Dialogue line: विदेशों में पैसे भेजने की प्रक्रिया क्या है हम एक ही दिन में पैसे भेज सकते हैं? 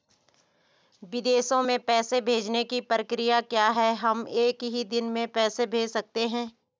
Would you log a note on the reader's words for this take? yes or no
no